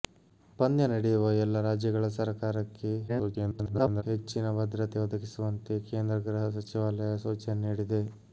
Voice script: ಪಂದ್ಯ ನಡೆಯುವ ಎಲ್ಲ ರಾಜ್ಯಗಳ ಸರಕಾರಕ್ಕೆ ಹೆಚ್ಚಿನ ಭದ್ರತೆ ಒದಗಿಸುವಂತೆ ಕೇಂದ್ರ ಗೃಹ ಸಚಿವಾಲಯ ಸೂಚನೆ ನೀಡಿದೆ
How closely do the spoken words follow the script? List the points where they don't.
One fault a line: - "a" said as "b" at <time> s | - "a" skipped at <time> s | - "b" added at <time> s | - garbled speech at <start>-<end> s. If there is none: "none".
- garbled speech at 3.1-4.0 s